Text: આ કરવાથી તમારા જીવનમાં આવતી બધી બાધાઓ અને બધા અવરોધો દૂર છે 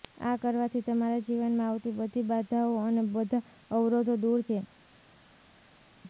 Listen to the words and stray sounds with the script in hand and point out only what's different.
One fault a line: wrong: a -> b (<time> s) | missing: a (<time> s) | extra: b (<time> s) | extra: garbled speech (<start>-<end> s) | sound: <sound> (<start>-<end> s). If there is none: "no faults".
no faults